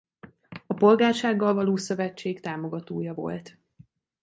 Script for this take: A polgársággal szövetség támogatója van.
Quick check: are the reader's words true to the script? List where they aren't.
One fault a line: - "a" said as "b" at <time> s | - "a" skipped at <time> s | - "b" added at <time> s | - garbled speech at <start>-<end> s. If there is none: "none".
- "való" added at 1.5 s
- "van" said as "volt" at 3.1 s